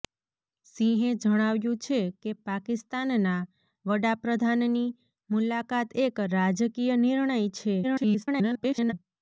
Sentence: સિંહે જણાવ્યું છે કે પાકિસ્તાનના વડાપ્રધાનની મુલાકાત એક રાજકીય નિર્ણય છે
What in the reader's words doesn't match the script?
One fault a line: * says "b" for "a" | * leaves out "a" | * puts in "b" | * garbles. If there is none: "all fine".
* garbles